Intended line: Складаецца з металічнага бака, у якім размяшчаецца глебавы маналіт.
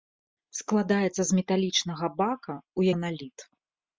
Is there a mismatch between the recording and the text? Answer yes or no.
yes